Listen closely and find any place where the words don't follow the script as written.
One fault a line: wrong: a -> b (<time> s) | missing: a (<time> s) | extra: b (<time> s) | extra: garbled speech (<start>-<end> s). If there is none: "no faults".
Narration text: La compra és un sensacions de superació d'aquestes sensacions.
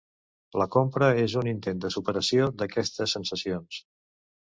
wrong: sensacions -> intent (1.5 s)